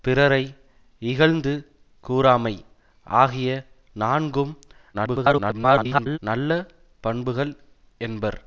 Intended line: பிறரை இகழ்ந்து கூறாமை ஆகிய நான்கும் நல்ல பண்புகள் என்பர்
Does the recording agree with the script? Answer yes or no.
no